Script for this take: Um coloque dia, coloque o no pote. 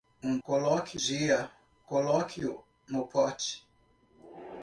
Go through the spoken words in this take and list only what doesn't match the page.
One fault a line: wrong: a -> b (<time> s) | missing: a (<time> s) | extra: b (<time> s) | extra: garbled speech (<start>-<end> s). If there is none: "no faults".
no faults